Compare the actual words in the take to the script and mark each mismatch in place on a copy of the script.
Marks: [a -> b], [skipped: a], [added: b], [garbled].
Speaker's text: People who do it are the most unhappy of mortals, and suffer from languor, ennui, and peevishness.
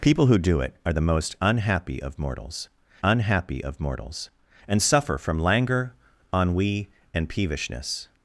People who do it are the most unhappy of mortals, [added: unhappy of mortals] and suffer from languor, ennui, and peevishness.